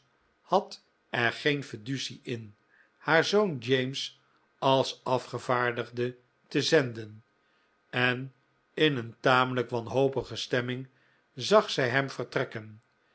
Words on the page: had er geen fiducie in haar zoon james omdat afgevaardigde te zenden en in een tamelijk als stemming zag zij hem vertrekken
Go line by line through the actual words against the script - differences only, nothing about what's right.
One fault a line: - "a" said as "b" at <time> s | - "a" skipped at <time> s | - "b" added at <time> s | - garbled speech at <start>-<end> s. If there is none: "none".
- "omdat" said as "als" at 4.6 s
- "als" said as "wanhopige" at 9.7 s